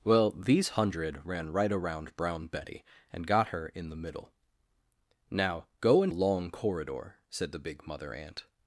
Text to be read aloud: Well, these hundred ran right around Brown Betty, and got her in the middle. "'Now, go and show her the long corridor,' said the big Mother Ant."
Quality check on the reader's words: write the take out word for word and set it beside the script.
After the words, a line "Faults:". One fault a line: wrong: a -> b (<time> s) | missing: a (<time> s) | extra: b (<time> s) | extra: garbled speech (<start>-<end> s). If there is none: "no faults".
Well, these hundred ran right around Brown Betty, and got her in the middle. "'Now, go and long corridor,' said the big Mother Ant."
Faults:
missing: show her the (6.1 s)